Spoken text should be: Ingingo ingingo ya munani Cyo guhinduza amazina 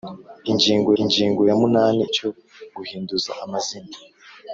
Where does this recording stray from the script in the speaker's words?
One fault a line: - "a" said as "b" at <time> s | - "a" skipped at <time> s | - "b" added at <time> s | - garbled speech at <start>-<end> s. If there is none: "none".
none